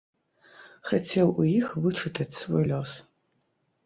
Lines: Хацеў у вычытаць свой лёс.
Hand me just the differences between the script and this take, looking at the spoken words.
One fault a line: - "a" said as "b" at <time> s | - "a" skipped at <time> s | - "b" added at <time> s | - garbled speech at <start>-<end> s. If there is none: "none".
- "іх" added at 1.5 s